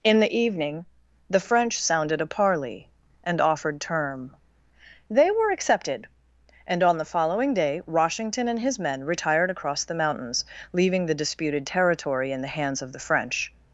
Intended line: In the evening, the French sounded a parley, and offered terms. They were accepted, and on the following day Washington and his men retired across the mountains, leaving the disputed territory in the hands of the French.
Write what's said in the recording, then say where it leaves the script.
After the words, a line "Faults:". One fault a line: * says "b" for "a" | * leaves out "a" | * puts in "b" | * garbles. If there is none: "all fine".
In the evening, the French sounded a parley, and offered term. They were accepted, and on the following day Washington and his men retired across the mountains, leaving the disputed territory in the hands of the French.
Faults:
* says "term" for "terms"